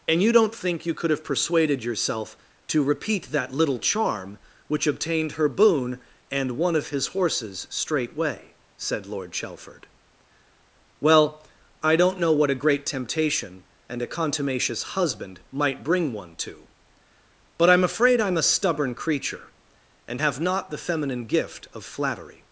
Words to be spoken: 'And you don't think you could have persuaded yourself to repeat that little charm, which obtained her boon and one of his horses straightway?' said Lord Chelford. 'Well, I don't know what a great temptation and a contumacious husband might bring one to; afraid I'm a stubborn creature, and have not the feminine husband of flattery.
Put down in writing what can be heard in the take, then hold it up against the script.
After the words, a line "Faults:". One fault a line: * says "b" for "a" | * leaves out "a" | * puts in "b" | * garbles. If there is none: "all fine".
'And you don't think you could have persuaded yourself to repeat that little charm, which obtained her boon and one of his horses straightway?' said Lord Chelford. 'Well, I don't know what a great temptation and a contumacious husband might bring one to; but I'm afraid I'm a stubborn creature, and have not the feminine gift of flattery.
Faults:
* puts in "but I'm"
* says "gift" for "husband"